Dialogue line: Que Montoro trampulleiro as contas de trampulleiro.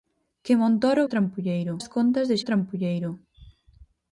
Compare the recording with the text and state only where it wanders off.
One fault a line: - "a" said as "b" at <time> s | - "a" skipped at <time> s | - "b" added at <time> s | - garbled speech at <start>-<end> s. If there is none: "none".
none